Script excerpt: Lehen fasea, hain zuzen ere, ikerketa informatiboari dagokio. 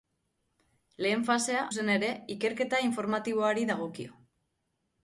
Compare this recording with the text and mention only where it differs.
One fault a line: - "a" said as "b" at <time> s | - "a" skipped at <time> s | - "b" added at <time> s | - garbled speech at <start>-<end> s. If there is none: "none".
- "hain" skipped at 1.6 s